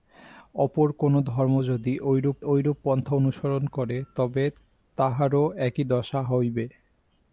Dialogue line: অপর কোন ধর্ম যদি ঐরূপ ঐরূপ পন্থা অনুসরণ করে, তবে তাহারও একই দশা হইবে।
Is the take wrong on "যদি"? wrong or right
right